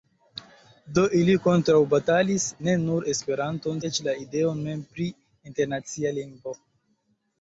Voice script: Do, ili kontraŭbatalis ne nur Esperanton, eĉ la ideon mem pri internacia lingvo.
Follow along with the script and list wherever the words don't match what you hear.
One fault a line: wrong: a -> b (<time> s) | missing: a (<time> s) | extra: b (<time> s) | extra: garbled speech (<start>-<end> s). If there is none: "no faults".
no faults